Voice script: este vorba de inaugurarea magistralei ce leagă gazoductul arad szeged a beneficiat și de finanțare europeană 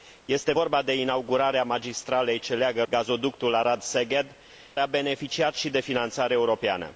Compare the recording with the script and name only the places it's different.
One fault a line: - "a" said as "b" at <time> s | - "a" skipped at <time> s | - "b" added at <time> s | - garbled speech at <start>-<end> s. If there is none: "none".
none